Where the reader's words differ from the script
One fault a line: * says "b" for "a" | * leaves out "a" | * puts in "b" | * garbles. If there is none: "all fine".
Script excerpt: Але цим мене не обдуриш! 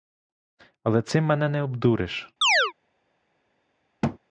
all fine